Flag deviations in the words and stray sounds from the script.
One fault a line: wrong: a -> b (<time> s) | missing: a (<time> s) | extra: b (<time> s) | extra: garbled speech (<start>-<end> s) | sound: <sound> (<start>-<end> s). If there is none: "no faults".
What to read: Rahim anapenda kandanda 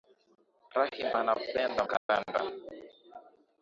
sound: dropout (2.0-2.1 s)